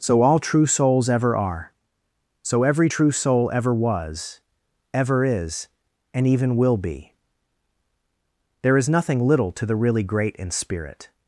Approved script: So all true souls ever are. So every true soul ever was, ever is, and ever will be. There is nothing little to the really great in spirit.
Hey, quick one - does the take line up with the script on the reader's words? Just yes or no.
no